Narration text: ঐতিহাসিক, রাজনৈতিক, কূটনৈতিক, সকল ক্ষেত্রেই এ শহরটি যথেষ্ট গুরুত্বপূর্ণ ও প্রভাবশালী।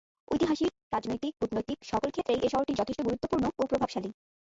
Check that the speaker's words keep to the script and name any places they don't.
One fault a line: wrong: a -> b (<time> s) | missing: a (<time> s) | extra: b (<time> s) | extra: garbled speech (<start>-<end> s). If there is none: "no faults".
no faults